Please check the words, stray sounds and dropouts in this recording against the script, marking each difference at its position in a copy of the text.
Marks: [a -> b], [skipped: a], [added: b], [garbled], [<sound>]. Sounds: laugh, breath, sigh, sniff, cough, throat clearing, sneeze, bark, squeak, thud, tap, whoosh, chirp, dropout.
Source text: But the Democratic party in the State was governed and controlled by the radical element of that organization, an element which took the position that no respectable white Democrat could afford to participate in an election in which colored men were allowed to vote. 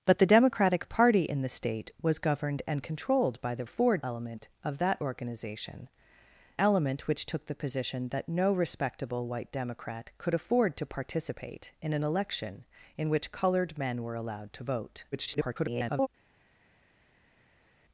But the Democratic party in the State was governed and controlled by the [radical -> afford] element of that organization, [skipped: an] element which took the position that no respectable white Democrat could afford to participate in an election in which colored men were allowed to vote. [garbled]